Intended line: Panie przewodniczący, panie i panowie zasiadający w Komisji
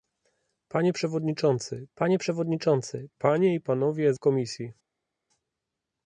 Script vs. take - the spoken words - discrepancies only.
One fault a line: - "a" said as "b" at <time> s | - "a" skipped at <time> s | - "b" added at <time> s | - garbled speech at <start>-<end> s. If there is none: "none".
- "przewodniczący panie" added at 2.2 s
- "zasiadający" skipped at 4.1 s